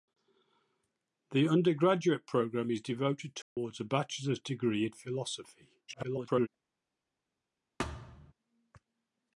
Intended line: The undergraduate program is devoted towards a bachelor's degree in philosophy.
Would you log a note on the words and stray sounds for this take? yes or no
yes